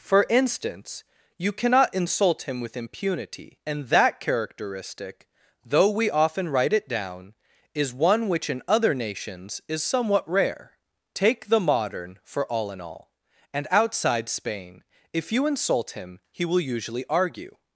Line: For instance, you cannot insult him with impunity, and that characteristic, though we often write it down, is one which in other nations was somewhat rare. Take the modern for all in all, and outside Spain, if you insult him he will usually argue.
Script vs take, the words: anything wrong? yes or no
yes